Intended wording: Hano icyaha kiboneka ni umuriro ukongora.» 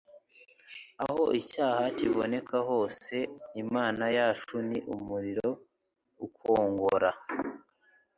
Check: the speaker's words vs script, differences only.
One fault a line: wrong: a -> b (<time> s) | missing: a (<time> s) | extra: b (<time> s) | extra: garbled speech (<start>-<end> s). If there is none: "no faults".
wrong: Hano -> Aho (1.1 s)
extra: hose Imana yacu (2.7 s)